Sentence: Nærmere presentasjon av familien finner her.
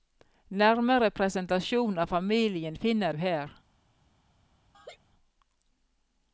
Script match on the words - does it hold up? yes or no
yes